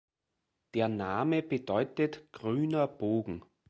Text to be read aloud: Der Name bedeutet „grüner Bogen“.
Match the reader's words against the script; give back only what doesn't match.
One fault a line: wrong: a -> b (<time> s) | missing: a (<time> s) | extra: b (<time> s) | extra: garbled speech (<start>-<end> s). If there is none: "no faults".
no faults